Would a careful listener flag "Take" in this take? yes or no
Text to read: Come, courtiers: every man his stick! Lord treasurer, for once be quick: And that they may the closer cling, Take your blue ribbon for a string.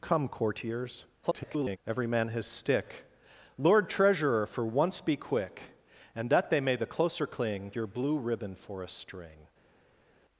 yes